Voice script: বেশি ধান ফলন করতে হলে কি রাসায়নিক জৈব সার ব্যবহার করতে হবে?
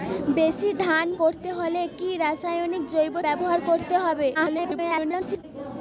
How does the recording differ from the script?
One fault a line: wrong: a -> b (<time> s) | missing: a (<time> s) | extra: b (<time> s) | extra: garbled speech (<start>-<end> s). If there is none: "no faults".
missing: ফলন (1.1 s)
missing: সার (3.1 s)
extra: garbled speech (4.3-5.4 s)